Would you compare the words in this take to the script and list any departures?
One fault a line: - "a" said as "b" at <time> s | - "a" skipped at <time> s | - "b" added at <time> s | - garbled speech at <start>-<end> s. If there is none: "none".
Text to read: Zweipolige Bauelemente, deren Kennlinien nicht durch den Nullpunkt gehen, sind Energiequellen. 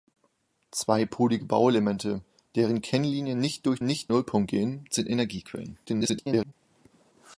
- "den" said as "nicht" at 3.8 s
- garbled speech at 5.9-6.5 s